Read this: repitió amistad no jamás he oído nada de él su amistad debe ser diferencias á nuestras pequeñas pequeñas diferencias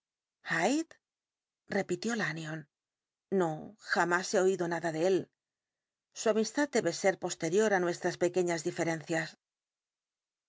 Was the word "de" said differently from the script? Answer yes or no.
no